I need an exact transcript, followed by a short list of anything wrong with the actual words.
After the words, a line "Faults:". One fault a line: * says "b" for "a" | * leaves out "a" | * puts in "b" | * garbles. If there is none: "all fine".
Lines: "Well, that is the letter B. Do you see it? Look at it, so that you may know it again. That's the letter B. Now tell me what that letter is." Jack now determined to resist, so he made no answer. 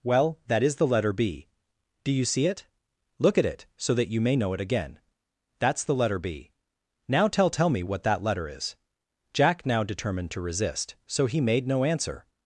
"Well, that is the letter B. Do you see it? Look at it, so that you may know it again. That's the letter B. Now tell tell me what that letter is." Jack now determined to resist, so he made no answer.
Faults:
* puts in "tell"